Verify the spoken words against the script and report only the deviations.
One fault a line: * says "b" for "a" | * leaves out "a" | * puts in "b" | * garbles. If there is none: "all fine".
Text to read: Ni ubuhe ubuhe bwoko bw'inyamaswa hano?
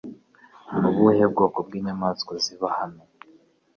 * leaves out "ubuhe"
* puts in "ziba"